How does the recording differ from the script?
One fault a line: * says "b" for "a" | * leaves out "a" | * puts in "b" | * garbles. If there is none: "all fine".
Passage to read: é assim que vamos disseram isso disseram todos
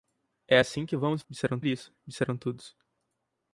all fine